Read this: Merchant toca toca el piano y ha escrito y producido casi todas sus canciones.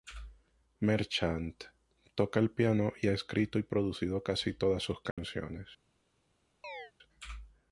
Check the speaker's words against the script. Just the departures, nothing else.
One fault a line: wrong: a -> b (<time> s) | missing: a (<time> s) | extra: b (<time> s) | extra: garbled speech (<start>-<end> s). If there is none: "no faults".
missing: toca (2.4 s)